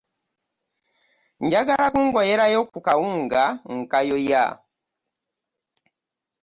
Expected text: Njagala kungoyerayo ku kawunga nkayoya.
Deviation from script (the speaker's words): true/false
false